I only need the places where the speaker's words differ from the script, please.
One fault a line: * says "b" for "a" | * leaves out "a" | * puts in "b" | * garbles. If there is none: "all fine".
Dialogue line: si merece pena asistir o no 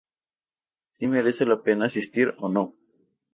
* puts in "la"